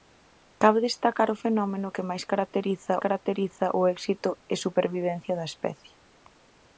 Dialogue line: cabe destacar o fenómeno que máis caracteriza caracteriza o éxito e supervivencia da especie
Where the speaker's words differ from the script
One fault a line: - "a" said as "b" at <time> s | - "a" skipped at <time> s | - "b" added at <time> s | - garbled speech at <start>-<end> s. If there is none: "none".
none